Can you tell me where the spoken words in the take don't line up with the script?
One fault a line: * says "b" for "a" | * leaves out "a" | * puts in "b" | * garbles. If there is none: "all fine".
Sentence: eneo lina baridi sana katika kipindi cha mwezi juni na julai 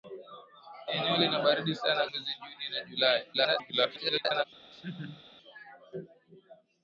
* leaves out "katika kipindi cha"
* garbles